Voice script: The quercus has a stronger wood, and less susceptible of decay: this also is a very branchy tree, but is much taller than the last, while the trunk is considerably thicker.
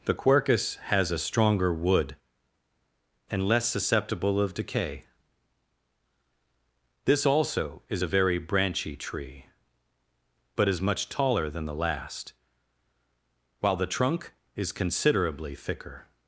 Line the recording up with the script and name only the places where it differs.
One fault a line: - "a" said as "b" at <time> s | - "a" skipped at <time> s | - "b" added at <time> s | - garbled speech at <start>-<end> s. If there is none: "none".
none